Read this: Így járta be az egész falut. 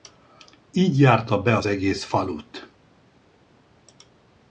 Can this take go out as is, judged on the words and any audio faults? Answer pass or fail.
pass